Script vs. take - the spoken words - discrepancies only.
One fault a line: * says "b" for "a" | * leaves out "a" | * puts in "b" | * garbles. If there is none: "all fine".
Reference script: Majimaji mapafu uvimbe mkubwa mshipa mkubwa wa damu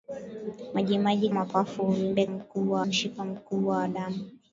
all fine